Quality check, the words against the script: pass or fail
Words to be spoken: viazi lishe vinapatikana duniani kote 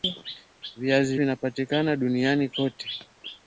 fail